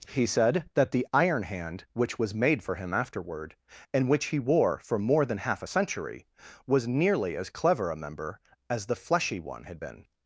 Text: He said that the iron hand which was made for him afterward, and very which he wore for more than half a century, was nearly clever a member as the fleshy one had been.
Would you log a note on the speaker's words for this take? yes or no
yes